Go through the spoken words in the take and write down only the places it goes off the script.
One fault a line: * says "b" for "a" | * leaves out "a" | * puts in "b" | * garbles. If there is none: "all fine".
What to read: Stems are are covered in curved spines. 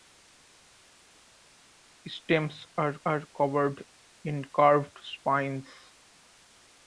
all fine